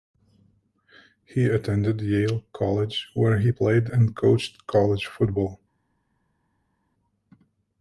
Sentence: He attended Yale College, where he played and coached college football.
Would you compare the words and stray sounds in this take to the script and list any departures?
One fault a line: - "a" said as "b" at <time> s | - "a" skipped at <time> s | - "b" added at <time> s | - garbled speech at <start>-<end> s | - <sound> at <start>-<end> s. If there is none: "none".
none